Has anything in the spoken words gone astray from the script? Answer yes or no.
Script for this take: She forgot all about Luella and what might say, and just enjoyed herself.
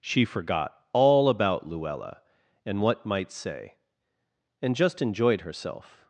no